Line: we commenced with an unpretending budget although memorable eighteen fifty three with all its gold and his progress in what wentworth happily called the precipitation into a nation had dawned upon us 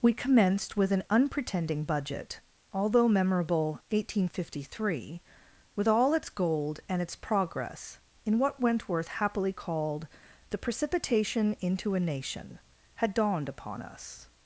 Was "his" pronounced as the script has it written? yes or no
no